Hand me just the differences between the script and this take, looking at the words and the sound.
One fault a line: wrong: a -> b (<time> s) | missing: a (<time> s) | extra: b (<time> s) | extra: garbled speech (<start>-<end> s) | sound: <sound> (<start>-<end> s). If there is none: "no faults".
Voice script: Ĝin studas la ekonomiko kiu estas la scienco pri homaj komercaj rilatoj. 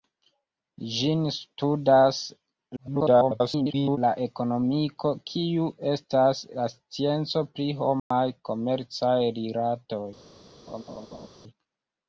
extra: garbled speech (2.8-4.0 s)
sound: dropout (8.0-8.1 s)
sound: laugh (10.7-11.3 s)